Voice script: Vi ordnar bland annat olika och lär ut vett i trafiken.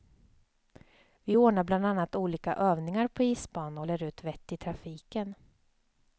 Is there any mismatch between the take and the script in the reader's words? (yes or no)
yes